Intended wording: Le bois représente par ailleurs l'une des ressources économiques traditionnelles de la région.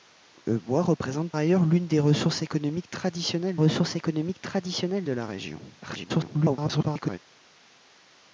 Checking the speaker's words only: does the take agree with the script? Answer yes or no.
no